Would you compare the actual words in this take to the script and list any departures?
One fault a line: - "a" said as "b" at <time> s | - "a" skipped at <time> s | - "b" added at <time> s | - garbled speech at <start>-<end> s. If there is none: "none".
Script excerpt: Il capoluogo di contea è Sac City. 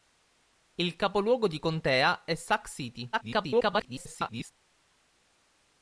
- garbled speech at 3.1-4.5 s